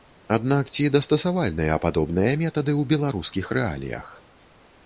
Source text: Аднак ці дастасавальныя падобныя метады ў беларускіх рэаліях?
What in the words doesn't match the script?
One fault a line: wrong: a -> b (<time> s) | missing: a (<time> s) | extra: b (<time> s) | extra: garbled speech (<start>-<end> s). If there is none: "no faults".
no faults